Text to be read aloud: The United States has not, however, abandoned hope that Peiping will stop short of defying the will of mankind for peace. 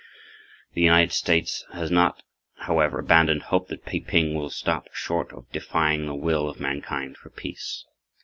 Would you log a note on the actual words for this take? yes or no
no